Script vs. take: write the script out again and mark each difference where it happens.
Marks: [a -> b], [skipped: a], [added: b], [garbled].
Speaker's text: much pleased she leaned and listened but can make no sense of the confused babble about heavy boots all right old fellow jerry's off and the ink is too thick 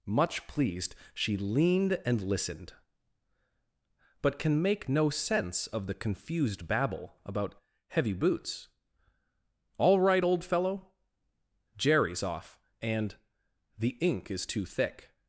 much pleased she leaned and listened but can make no sense of the confused babble about heavy boots all right old fellow jerry's off and the ink is too thick